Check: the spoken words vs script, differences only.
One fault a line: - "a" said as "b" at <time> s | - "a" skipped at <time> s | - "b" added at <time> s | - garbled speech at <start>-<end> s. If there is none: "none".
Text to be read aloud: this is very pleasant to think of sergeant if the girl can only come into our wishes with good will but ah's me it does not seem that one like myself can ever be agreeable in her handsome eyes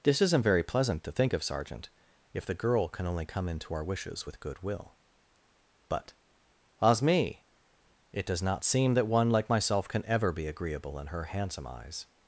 - "is" said as "isn't" at 0.2 s